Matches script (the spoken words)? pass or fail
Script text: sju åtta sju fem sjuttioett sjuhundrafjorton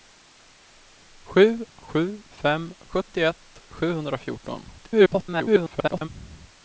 fail